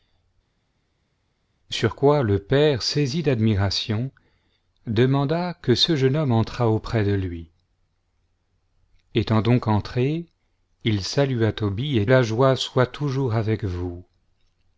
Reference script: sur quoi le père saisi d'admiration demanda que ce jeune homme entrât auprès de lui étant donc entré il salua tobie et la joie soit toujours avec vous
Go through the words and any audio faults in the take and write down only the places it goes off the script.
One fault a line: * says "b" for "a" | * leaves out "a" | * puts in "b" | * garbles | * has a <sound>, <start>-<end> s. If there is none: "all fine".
all fine